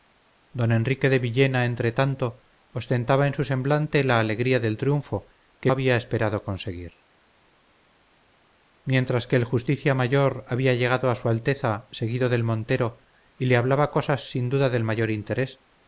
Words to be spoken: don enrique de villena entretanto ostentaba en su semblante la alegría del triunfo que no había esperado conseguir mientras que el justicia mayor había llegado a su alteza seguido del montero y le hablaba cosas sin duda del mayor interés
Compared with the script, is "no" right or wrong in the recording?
wrong